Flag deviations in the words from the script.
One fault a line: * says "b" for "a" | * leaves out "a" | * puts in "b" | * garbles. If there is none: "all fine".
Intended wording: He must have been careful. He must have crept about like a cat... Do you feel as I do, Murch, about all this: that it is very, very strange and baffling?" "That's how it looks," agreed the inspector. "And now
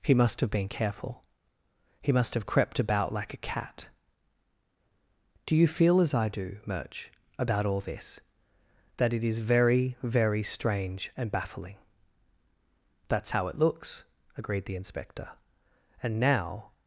all fine